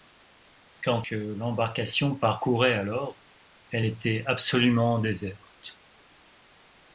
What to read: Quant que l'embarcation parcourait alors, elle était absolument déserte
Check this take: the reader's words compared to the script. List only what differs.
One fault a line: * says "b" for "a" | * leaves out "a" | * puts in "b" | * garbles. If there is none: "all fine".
all fine